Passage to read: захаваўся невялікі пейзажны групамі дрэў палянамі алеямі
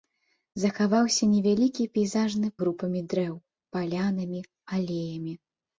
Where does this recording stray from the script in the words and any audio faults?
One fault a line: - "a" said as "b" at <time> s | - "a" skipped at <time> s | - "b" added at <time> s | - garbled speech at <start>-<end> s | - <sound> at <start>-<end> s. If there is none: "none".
none